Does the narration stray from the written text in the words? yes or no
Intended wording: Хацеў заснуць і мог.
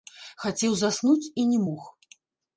yes